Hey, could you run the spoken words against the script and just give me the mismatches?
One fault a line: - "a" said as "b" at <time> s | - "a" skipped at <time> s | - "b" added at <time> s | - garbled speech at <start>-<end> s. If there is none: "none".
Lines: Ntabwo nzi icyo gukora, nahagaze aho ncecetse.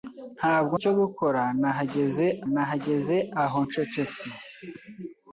- "nzi" skipped at 0.8 s
- "nahagaze" added at 2.5 s